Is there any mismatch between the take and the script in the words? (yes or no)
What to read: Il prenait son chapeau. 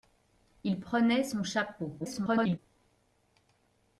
yes